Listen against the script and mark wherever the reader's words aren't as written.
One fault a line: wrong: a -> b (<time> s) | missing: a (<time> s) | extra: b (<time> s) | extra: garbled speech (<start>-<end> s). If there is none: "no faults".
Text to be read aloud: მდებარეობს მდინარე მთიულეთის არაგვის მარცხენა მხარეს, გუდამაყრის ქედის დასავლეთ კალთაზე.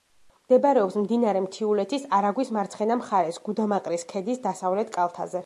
no faults